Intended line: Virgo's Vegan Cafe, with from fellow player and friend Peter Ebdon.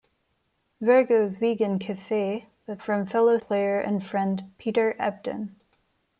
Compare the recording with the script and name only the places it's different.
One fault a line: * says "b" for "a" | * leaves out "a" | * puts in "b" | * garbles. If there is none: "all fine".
all fine